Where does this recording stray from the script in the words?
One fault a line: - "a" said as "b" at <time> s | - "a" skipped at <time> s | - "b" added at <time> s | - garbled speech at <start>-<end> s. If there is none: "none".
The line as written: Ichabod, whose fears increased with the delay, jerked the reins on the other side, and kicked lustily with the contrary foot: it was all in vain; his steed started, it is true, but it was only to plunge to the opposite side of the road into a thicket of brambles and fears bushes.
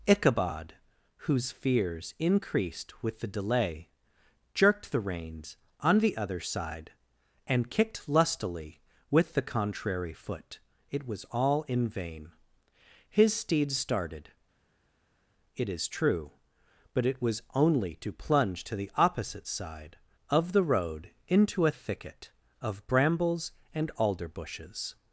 - "fears" said as "alder" at 23.9 s